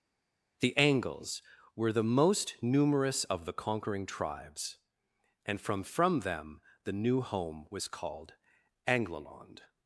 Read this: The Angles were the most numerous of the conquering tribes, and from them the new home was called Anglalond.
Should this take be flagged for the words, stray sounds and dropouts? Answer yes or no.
yes